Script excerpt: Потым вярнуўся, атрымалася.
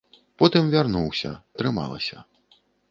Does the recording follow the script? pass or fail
pass